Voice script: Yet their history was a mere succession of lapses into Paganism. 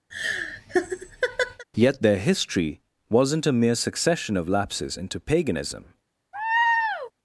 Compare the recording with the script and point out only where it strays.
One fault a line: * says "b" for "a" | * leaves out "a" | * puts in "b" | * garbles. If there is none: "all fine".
* says "wasn't" for "was"